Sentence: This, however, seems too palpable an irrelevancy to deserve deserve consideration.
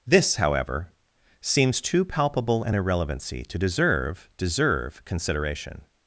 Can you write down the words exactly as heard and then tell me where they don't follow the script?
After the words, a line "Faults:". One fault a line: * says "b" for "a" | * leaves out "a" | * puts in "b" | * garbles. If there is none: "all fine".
This, however, seems too palpable an irrelevancy to deserve deserve consideration.
Faults:
all fine